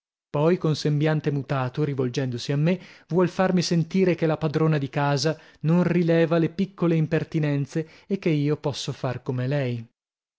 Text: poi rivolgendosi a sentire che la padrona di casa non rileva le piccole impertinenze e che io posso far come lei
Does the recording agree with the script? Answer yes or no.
no